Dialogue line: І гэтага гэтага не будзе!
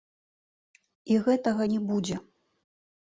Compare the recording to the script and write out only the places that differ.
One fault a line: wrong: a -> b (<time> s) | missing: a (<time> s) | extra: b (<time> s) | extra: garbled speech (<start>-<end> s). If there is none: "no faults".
missing: гэтага (1.6 s)